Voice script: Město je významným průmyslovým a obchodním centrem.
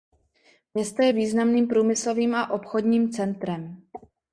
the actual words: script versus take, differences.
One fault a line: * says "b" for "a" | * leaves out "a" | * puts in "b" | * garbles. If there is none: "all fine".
all fine